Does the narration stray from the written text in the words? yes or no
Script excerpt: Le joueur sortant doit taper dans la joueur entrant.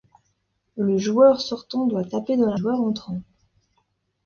no